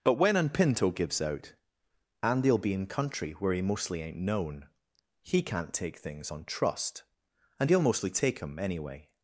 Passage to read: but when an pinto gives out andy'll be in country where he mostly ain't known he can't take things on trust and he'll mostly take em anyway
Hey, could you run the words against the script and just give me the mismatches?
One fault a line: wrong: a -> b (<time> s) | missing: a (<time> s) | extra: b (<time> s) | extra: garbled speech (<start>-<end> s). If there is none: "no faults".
no faults